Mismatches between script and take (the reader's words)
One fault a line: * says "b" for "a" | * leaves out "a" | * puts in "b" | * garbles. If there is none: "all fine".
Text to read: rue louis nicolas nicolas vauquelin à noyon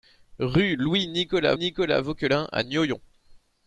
all fine